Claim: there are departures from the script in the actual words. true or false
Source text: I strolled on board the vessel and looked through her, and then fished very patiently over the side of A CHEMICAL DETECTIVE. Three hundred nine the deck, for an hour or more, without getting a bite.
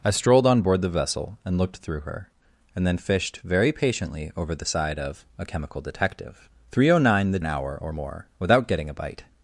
true